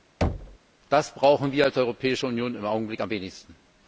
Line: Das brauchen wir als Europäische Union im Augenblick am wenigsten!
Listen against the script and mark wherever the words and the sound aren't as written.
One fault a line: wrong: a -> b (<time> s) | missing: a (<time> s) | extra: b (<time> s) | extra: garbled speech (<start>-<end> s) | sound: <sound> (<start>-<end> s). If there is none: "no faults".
sound: thud (0.2-0.6 s)